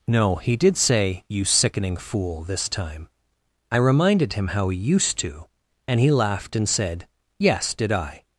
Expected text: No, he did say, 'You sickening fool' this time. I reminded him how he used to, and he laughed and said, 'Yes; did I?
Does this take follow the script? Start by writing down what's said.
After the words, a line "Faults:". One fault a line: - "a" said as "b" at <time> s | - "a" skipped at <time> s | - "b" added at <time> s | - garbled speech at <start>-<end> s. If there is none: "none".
No, he did say, 'You sickening fool' this time. I reminded him how he used to, and he laughed and said, 'Yes; did I?
Faults:
none